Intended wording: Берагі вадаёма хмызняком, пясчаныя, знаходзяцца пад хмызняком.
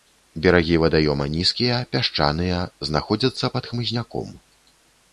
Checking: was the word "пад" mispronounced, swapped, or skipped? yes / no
no